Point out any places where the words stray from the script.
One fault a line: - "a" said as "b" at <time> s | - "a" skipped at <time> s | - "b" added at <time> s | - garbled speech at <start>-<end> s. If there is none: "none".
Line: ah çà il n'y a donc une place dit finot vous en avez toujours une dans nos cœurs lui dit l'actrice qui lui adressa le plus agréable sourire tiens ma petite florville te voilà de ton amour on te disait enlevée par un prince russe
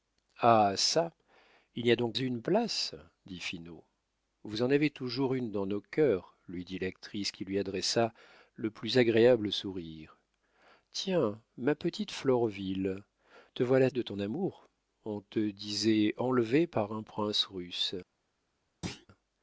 none